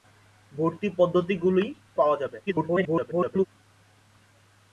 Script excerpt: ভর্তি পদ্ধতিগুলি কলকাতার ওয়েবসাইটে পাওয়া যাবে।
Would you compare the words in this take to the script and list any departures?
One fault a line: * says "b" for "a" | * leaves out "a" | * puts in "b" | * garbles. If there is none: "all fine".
* leaves out "কলকাতার ওয়েবসাইটে"
* garbles